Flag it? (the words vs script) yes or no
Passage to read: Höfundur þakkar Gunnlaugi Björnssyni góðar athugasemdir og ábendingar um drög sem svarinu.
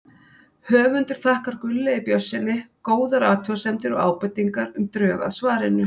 yes